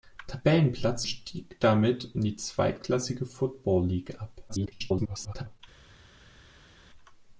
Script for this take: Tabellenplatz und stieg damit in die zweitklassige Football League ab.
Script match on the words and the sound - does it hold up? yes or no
no